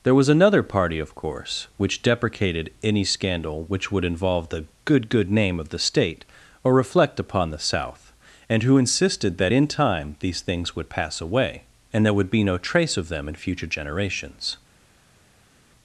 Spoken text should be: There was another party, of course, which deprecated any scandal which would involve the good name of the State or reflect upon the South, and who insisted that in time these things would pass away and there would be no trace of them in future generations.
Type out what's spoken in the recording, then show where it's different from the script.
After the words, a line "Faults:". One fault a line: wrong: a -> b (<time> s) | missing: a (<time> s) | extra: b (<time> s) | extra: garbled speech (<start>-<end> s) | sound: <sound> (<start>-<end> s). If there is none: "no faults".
There was another party, of course, which deprecated any scandal which would involve the good good name of the State or reflect upon the South, and who insisted that in time these things would pass away and there would be no trace of them in future generations.
Faults:
extra: good (5.1 s)